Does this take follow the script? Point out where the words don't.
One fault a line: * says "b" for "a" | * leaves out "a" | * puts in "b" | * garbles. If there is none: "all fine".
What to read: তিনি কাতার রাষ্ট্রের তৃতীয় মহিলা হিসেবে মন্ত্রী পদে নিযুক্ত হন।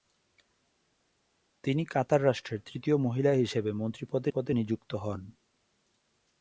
* puts in "পদে"